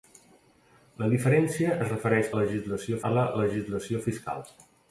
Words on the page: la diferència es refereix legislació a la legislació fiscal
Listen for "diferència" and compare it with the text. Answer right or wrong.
right